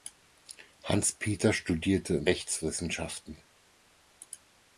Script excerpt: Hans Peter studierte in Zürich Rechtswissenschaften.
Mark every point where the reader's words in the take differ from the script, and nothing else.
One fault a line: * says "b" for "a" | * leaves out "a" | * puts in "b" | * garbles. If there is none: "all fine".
* leaves out "Zürich"